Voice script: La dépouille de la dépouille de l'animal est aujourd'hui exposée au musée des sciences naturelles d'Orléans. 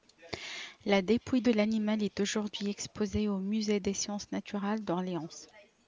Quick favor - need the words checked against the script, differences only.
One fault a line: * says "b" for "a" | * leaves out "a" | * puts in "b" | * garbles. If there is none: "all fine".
* leaves out "la dépouille de"